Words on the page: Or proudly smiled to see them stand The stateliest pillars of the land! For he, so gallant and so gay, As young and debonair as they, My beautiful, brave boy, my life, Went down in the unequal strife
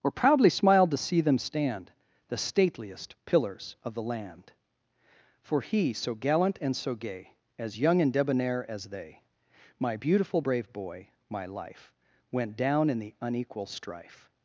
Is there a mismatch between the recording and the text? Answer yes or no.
no